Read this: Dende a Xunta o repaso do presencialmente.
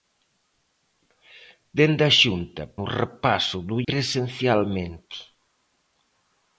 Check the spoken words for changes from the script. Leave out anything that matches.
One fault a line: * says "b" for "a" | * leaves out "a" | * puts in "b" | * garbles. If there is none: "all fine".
all fine